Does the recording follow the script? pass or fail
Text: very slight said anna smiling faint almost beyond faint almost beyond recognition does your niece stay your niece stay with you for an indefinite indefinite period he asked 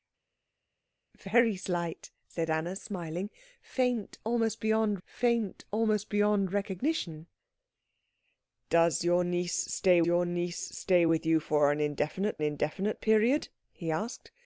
pass